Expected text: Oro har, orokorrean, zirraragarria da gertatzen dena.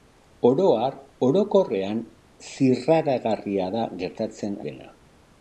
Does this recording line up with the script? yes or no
yes